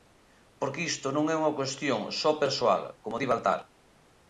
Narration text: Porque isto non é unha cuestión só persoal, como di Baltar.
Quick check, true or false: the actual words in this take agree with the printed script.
true